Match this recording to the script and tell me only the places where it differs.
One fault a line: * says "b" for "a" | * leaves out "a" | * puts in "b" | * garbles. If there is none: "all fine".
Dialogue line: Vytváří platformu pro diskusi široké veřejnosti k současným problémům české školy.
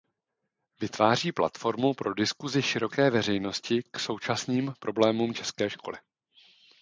all fine